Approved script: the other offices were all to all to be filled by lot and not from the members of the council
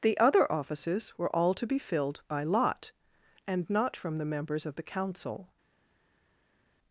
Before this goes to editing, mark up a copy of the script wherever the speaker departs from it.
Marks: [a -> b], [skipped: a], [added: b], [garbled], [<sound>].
the other offices were all to [skipped: all to] be filled by lot and not from the members of the council